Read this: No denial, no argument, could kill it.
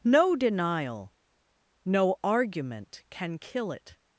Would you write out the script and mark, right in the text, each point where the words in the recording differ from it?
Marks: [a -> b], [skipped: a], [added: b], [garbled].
No denial, no argument, [could -> can] kill it.